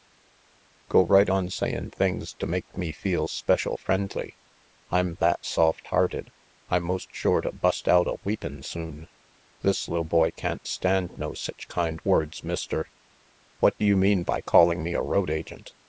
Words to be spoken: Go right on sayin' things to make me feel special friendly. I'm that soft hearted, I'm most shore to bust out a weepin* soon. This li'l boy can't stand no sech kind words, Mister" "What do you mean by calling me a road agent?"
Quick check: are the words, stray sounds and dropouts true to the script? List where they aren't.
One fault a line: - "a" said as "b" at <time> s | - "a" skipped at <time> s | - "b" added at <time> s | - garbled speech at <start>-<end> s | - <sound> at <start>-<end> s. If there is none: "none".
none